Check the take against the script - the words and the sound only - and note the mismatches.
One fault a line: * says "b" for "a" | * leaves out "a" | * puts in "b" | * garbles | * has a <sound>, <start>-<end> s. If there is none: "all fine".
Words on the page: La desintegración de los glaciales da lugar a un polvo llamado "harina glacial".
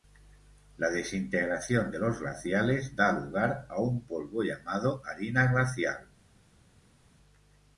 all fine